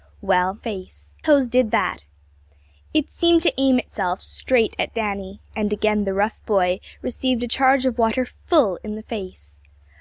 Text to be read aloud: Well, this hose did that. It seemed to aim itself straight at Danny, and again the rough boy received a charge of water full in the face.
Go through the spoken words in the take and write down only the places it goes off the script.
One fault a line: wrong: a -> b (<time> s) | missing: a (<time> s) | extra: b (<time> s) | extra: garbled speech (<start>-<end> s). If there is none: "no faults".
wrong: this -> face (0.6 s)